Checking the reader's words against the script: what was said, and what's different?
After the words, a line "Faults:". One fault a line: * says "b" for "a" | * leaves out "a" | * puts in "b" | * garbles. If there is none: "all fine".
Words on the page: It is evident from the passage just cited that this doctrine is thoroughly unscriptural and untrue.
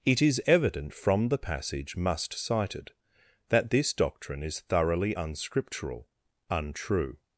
It is evident from the passage must cited that this doctrine is thoroughly unscriptural untrue.
Faults:
* says "must" for "just"
* leaves out "and"